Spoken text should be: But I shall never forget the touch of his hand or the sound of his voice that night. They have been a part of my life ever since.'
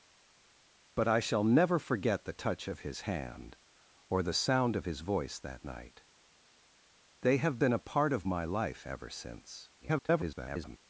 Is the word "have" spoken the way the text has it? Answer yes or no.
yes